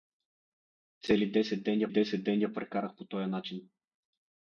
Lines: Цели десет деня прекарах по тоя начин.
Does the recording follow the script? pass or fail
fail